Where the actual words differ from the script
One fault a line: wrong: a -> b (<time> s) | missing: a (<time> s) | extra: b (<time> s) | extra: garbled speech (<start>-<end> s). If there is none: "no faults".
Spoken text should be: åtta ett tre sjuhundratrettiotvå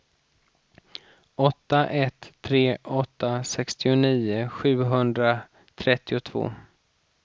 extra: åtta sextionio (2.8 s)